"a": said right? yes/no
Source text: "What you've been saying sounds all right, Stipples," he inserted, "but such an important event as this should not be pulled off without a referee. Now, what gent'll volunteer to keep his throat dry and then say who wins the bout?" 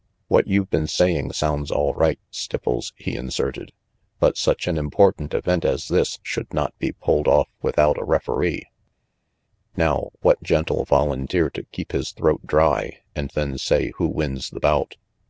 yes